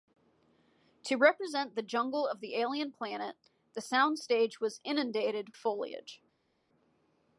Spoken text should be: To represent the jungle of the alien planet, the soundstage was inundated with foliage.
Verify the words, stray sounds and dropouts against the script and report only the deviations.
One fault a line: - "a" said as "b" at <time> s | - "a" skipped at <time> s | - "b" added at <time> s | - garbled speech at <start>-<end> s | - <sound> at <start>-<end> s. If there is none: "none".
- "with" skipped at 5.5 s